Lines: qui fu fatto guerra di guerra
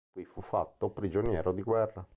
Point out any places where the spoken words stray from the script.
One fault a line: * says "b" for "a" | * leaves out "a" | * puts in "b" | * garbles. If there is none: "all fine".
* says "prigioniero" for "guerra"